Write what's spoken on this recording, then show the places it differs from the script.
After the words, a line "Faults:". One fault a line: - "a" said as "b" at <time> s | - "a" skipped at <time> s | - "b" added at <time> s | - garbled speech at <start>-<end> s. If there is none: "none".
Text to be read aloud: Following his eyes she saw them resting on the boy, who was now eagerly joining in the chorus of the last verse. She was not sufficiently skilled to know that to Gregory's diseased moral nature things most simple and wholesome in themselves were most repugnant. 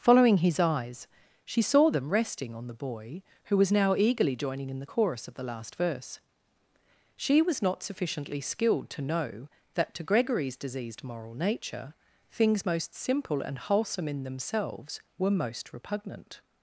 Following his eyes she saw them resting on the boy, who was now eagerly joining in the chorus of the last verse. She was not sufficiently skilled to know that to Gregory's diseased moral nature things most simple and wholesome in themselves were most repugnant.
Faults:
none